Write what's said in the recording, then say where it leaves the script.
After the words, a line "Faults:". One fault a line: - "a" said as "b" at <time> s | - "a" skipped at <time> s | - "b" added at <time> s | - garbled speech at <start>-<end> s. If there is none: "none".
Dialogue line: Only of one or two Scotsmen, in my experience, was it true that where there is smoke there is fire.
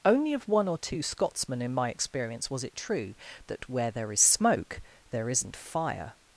Only of one or two Scotsmen, in my experience, was it true that where there is smoke there isn't fire.
Faults:
- "is" said as "isn't" at 5.3 s